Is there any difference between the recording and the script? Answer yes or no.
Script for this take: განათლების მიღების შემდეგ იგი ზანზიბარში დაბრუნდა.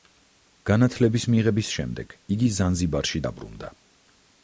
no